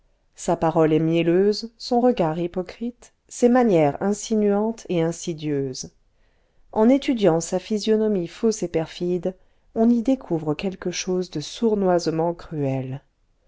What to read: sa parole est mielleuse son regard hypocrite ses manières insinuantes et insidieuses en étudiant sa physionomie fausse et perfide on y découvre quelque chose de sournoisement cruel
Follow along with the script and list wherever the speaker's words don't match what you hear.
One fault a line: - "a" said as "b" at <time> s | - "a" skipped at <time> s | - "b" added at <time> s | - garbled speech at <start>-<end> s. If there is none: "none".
none